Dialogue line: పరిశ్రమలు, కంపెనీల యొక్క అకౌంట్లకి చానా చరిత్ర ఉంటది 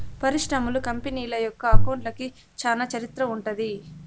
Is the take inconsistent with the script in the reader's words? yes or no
no